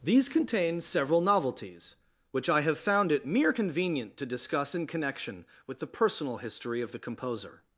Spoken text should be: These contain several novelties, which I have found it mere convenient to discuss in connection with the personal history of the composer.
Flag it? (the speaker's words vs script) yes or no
no